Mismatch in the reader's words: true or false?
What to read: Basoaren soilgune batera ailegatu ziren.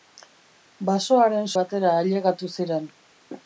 true